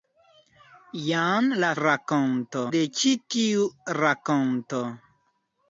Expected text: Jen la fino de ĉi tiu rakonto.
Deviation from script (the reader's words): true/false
true